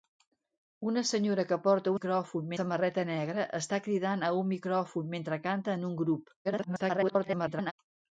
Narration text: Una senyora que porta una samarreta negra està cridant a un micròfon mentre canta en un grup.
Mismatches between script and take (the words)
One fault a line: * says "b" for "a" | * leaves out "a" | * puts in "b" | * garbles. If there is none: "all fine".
* says "micròfon" for "una"
* garbles